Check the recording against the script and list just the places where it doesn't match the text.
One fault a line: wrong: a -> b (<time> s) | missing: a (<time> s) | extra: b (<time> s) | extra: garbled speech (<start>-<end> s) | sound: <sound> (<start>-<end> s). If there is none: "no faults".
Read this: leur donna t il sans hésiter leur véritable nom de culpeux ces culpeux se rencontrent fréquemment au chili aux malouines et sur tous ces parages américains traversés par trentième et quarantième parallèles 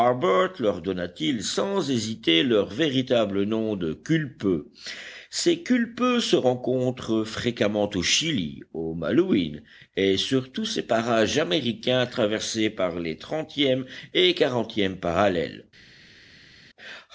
extra: les (13.0 s)